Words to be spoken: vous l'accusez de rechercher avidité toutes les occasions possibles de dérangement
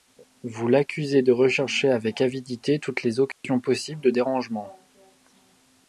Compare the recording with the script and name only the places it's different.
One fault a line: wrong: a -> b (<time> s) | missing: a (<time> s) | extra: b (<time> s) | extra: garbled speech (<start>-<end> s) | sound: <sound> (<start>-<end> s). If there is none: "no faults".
extra: avec (1.9 s)
sound: dropout (3.3-3.4 s)